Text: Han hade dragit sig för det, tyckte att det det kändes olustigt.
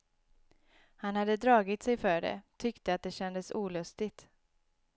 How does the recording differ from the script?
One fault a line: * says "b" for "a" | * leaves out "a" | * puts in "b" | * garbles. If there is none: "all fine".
* leaves out "det"